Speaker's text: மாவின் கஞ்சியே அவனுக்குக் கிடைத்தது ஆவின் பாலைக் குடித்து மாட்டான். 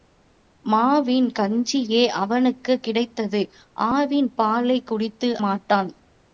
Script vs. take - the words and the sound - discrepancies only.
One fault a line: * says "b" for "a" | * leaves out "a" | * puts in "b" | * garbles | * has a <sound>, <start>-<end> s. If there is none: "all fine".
all fine